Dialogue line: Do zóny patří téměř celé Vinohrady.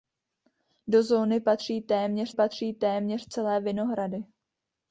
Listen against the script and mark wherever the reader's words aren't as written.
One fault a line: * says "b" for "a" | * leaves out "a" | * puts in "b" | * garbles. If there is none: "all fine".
* puts in "patří téměř"